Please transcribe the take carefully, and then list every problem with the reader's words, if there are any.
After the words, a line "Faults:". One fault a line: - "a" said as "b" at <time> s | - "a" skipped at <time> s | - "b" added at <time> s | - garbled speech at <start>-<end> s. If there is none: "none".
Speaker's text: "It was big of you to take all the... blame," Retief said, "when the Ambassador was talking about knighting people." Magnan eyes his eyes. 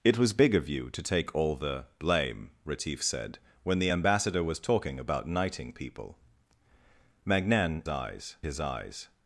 "It was big of you to take all the... blame," Retief said, "when the Ambassador was talking about knighting people." Magnan eyes his eyes.
Faults:
none